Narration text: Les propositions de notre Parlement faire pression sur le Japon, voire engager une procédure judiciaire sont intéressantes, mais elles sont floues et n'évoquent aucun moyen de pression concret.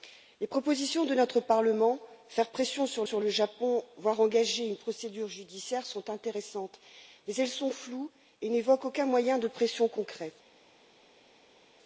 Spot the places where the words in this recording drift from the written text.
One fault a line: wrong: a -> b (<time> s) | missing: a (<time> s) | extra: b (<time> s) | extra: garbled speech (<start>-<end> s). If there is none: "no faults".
extra: sur (3.0 s)